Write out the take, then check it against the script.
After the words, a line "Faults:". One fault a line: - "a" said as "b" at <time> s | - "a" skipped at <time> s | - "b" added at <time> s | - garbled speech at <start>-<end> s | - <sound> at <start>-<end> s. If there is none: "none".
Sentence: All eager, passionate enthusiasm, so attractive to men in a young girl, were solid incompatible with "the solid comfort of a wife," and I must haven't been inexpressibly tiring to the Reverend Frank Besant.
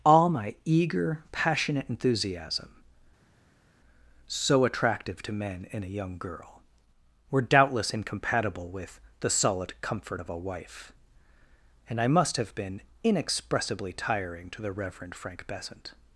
All my eager, passionate enthusiasm, so attractive to men in a young girl, were doubtless incompatible with "the solid comfort of a wife," and I must have been inexpressibly tiring to the Reverend Frank Besant.
Faults:
- "my" added at 0.3 s
- "solid" said as "doubtless" at 7.4 s
- "haven't" said as "have" at 12.3 s